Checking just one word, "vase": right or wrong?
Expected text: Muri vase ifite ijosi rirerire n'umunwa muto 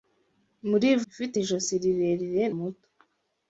wrong